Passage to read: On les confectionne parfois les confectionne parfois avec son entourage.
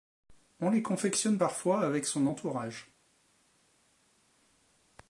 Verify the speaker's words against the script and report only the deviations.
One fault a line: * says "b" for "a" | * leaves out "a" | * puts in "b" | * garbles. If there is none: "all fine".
* leaves out "les confectionne parfois"